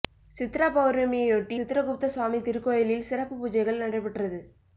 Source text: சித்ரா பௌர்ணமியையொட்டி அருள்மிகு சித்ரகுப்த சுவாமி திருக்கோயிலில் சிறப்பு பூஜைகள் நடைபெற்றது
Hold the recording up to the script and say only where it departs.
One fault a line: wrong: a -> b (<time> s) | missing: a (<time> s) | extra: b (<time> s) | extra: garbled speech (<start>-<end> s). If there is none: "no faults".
missing: அருள்மிகு (1.6 s)